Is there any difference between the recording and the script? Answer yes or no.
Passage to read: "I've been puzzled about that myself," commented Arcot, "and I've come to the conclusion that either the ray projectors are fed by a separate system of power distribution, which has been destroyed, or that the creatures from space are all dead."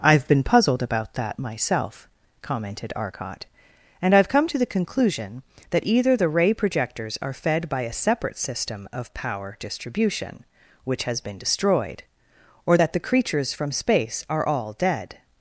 no